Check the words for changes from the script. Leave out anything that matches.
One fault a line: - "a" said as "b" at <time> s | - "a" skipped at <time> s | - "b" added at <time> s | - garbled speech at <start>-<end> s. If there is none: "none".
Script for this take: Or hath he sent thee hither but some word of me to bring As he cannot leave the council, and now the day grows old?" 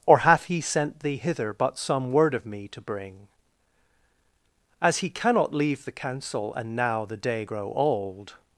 - "grows" said as "grow" at 7.4 s